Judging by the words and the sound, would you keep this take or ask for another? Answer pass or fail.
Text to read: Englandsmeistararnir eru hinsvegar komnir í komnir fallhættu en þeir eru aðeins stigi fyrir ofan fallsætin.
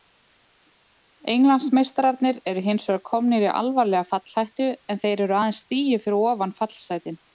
fail